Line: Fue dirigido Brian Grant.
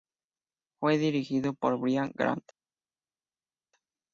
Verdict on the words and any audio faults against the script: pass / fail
fail